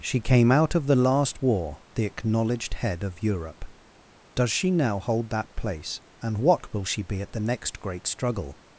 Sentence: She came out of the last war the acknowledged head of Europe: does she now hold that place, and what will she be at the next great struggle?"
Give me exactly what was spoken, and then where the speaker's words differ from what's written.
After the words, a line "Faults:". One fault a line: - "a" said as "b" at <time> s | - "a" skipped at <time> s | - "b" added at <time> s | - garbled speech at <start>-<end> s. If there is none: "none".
She came out of the last war the acknowledged head of Europe: does she now hold that place, and what will she be at the next great struggle?"
Faults:
none